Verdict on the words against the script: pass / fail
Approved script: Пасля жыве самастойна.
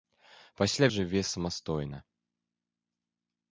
pass